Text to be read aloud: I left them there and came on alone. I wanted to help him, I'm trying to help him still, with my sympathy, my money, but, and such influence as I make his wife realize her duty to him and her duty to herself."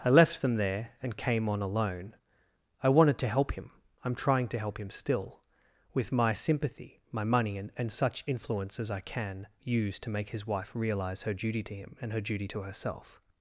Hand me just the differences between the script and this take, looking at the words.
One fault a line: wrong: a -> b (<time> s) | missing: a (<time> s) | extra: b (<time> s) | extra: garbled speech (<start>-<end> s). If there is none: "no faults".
wrong: but -> and (7.5 s)
extra: can use to (9.0 s)